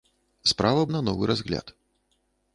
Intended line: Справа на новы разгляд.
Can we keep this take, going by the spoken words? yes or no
yes